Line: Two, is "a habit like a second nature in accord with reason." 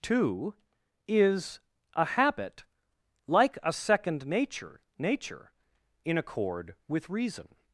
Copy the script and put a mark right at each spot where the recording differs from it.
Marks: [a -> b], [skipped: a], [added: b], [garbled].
Two, is "a habit like a second nature [added: nature] in accord with reason."